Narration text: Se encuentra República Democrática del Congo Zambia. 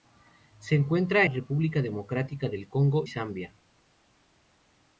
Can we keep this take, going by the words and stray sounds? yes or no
yes